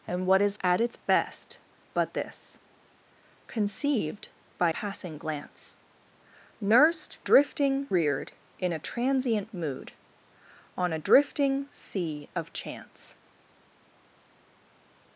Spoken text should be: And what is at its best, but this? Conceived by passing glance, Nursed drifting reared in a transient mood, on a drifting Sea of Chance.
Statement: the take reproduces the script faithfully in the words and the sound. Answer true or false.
true